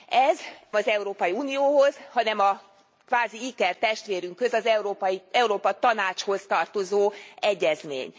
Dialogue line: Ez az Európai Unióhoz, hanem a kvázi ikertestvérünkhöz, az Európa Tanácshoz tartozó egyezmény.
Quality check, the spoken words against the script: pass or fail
pass